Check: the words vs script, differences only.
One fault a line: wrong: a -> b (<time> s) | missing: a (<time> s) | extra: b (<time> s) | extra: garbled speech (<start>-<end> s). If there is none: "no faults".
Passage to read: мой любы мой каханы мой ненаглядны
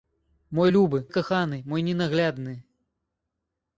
missing: мой (1.1 s)